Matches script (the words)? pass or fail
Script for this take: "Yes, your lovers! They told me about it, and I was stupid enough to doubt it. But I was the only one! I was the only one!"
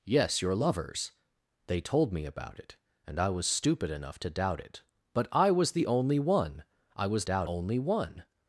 fail